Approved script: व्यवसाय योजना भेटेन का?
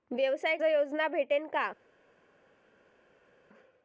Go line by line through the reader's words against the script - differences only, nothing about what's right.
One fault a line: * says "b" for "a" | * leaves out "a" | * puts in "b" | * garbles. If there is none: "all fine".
all fine